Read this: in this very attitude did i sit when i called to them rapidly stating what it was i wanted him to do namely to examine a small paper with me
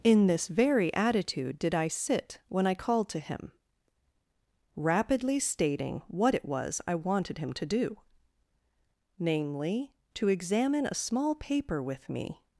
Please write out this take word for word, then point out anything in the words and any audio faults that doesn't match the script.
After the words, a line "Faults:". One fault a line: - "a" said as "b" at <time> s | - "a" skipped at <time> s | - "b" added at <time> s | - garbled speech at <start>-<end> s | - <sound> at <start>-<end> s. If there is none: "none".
in this very attitude did i sit when i called to him rapidly stating what it was i wanted him to do namely to examine a small paper with me
Faults:
- "them" said as "him" at 3.2 s